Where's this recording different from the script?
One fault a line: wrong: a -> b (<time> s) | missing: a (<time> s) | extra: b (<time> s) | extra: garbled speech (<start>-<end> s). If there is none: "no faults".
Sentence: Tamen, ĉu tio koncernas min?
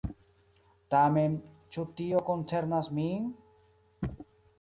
no faults